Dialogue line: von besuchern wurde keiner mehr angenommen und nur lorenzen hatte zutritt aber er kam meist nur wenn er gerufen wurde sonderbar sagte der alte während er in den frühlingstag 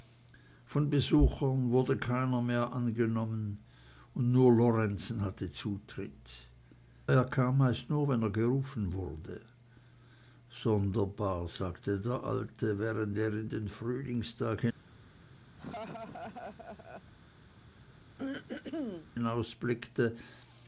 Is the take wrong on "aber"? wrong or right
wrong